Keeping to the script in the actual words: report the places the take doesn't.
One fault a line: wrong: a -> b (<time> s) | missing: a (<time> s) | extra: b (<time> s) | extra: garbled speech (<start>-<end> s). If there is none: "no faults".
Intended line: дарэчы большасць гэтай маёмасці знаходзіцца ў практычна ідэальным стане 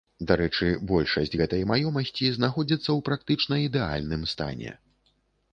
no faults